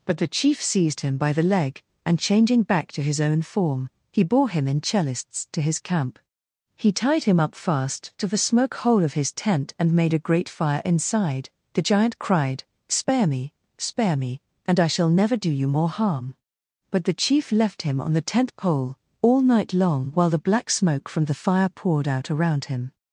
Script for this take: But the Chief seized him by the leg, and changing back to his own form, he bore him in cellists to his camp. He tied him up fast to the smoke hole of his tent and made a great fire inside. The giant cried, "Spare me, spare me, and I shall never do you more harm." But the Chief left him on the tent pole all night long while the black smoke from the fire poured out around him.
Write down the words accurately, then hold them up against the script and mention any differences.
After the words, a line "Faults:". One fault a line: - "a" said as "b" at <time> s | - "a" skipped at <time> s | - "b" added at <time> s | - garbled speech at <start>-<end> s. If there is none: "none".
But the Chief seized him by the leg, and changing back to his own form, he bore him in cellists to his camp. He tied him up fast to the smoke hole of his tent and made a great fire inside. The giant cried, "Spare me, spare me, and I shall never do you more harm." But the Chief left him on the tent pole all night long while the black smoke from the fire poured out around him.
Faults:
none